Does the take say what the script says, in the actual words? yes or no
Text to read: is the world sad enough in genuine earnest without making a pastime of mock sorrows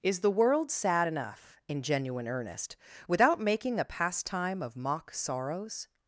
yes